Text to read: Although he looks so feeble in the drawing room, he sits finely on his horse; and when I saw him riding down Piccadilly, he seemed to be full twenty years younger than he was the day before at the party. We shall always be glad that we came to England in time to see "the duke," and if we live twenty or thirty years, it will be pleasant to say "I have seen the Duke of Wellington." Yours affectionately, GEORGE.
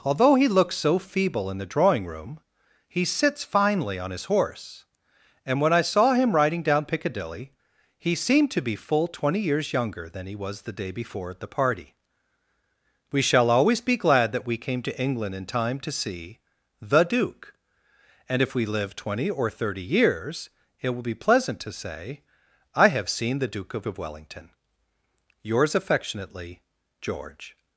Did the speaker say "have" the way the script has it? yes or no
yes